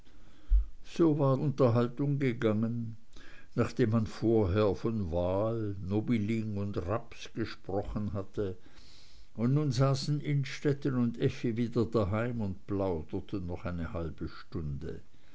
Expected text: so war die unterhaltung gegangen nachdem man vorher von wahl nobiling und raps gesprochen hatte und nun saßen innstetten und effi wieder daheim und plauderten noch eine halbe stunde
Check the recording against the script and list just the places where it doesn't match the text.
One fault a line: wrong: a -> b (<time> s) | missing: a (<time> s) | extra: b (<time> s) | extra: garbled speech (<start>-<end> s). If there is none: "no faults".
missing: die (1.4 s)